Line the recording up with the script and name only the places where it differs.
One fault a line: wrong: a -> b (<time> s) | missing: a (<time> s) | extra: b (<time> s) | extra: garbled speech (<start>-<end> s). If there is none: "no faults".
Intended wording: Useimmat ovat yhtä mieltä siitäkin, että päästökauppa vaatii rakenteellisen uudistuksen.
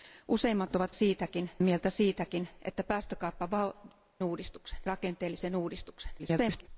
wrong: yhtä -> siitäkin (0.9 s)
wrong: vaatii -> uudistuksen (4.2 s)
extra: garbled speech (6.2-6.7 s)